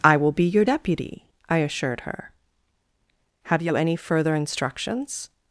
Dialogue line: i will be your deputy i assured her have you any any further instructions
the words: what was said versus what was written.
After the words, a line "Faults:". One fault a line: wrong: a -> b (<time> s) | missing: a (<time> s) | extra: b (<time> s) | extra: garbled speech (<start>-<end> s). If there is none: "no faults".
i will be your deputy i assured her have you any further instructions
Faults:
missing: any (4.0 s)